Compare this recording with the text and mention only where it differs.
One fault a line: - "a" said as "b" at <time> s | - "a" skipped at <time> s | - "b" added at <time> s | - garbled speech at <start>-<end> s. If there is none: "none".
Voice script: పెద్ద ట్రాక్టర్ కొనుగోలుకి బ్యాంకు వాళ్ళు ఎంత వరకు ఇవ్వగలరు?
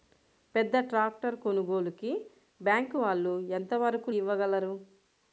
none